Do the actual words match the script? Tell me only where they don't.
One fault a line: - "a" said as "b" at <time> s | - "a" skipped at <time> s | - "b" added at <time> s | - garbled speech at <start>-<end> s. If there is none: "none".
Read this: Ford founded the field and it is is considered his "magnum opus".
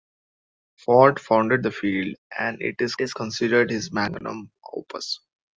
none